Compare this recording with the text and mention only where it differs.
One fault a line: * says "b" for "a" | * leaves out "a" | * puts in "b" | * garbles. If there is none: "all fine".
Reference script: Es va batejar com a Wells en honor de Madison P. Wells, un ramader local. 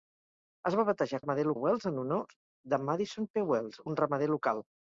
* says "ramader" for "com"